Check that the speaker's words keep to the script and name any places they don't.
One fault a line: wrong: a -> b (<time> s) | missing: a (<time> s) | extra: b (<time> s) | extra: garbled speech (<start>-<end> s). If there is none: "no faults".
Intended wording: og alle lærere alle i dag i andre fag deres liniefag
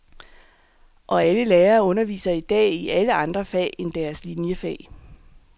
wrong: alle -> underviser (1.8 s)
extra: alle (2.9 s)
extra: end (3.8 s)